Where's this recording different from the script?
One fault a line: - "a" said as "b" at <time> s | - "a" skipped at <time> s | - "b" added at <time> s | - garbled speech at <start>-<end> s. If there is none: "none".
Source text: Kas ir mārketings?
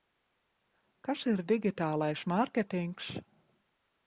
- "digitālais" added at 1.5 s